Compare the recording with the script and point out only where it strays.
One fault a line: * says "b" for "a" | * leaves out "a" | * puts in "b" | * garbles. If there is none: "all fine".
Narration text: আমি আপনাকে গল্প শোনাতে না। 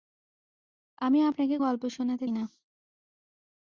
all fine